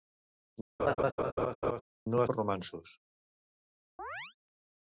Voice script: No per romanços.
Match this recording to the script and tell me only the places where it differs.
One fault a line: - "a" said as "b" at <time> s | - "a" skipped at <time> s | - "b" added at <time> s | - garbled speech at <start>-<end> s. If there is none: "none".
none